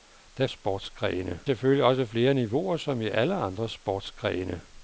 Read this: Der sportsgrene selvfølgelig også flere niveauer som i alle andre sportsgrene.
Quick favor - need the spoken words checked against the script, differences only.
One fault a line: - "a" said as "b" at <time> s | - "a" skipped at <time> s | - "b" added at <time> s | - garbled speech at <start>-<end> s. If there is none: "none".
none